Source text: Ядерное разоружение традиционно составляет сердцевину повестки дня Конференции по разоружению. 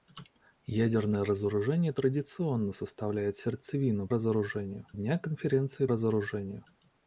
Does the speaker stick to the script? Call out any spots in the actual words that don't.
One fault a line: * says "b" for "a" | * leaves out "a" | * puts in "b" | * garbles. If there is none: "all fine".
* says "разоружению" for "повестки"
* leaves out "по"